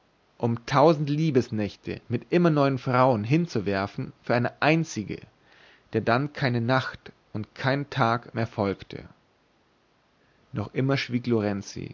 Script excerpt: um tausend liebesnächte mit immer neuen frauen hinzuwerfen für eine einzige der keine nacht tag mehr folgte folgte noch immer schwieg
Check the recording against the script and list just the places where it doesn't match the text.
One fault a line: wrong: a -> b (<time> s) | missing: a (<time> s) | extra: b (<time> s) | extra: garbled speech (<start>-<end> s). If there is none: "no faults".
extra: dann (6.0 s)
extra: und kein (7.3 s)
missing: folgte (9.1 s)